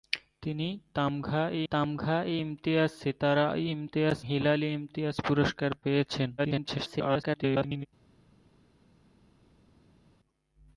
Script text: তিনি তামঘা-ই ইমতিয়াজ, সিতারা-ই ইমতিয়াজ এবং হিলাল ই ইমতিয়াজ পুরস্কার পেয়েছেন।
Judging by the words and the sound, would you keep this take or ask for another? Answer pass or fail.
fail